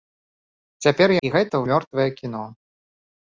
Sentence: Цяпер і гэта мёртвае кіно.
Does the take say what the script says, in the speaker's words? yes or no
yes